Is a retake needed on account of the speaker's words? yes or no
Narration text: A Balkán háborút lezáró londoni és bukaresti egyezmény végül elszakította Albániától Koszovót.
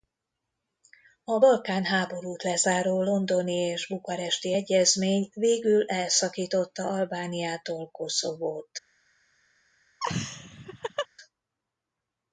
no